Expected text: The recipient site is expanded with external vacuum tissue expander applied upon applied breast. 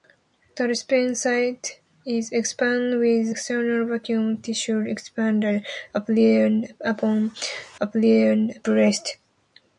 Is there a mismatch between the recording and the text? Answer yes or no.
no